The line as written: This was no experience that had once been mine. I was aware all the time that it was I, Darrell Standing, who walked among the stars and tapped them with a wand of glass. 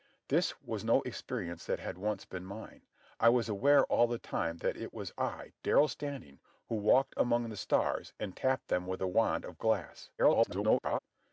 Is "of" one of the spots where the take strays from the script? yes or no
no